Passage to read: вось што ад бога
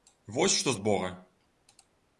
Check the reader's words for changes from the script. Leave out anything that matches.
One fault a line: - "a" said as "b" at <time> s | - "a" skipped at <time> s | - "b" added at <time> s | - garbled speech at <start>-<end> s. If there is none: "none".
none